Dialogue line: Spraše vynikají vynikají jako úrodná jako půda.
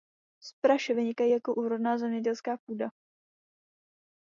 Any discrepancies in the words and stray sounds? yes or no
yes